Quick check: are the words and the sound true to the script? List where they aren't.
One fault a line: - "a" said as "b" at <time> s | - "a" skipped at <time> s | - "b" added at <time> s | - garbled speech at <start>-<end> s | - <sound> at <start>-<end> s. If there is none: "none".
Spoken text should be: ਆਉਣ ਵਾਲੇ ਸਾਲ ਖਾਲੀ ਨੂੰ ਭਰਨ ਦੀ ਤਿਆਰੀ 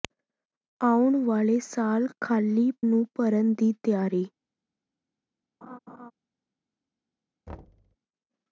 - laugh at 5.6-6.1 s
- thud at 7.5-8.0 s